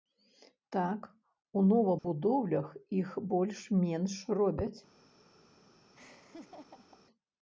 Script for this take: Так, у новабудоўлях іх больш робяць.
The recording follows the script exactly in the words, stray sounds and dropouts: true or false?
false